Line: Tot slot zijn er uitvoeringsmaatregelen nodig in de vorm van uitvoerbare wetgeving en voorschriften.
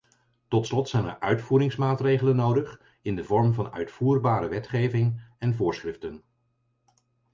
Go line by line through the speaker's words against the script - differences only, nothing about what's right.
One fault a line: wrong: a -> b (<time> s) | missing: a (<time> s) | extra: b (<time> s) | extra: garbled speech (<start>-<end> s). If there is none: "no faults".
no faults